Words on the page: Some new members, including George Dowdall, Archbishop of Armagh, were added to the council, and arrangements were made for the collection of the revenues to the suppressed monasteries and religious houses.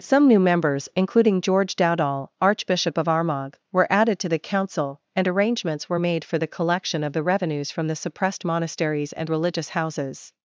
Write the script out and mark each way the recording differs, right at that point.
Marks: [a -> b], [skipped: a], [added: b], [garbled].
Some new members, including George Dowdall, Archbishop of Armagh, were added to the council, and arrangements were made for the collection of the revenues [to -> from] the suppressed monasteries and religious houses.